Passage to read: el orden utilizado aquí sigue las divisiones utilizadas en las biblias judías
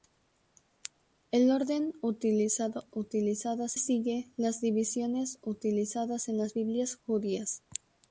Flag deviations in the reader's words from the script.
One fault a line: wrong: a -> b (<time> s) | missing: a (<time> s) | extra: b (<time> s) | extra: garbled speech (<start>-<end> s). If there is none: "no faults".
wrong: aquí -> utilizadas (2.9 s)